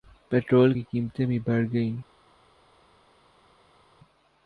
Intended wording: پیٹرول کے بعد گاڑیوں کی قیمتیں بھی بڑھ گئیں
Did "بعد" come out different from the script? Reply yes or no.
yes